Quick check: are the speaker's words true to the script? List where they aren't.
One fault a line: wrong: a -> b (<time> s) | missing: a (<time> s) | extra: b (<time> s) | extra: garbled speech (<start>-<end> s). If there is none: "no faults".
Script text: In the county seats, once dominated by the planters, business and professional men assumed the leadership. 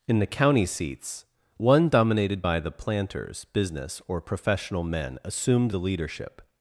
wrong: once -> one (1.6 s)
wrong: and -> or (4.1 s)